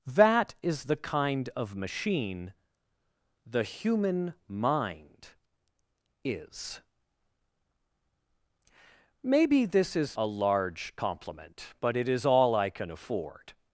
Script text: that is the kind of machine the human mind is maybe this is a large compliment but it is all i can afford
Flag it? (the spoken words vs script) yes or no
no